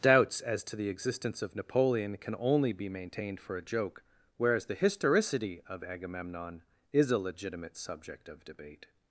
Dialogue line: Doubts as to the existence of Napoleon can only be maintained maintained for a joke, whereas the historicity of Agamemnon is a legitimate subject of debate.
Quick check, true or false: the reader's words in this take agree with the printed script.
false